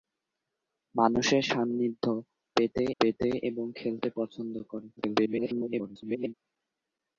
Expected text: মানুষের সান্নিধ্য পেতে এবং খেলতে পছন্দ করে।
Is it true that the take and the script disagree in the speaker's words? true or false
true